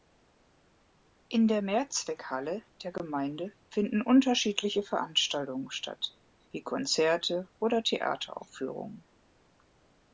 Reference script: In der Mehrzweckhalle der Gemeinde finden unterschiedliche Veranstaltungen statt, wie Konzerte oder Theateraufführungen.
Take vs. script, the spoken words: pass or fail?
pass